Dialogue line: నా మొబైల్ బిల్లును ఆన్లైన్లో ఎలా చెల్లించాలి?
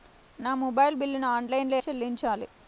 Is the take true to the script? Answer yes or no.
no